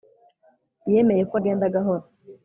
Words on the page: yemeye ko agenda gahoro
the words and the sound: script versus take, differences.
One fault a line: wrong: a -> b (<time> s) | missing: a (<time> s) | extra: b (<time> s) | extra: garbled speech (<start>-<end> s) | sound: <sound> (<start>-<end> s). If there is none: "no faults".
no faults